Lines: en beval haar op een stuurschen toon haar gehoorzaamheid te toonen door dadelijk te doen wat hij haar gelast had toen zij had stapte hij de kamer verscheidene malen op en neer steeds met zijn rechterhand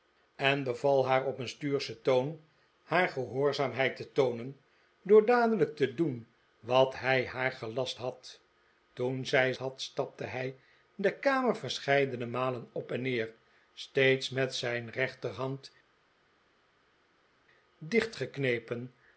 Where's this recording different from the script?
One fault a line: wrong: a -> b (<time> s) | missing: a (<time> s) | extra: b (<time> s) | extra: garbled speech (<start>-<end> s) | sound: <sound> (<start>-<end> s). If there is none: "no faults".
no faults